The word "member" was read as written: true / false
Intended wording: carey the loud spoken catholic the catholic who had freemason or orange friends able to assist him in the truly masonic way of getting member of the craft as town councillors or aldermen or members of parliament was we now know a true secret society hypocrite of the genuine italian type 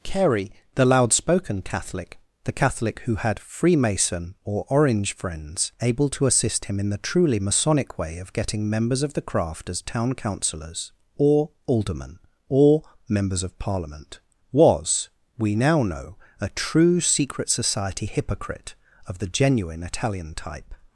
false